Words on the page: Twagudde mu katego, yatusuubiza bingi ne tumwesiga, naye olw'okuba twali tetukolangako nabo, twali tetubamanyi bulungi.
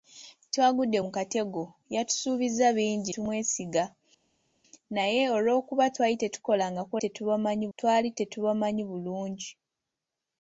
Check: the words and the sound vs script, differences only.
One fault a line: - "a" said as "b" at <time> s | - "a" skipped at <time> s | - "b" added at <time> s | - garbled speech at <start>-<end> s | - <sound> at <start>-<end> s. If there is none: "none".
- "ne" skipped at 3.1 s
- "nabo" said as "tetubamanyi" at 7.0 s